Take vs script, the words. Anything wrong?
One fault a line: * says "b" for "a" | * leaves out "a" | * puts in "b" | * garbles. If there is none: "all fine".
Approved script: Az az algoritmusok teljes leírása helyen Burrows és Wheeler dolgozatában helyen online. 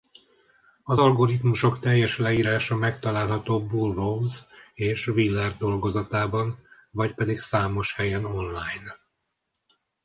* leaves out "az"
* says "megtalálható" for "helyen"
* puts in "vagy pedig számos"